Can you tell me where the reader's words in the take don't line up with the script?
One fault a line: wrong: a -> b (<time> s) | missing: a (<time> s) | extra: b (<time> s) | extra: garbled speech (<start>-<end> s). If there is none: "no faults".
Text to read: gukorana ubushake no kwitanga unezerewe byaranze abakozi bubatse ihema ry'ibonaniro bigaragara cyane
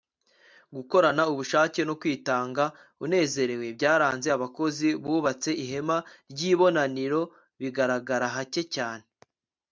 extra: hake (8.4 s)